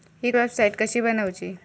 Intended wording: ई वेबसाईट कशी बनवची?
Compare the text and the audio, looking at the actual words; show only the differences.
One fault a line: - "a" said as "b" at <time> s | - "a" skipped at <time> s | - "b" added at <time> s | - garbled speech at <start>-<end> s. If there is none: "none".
none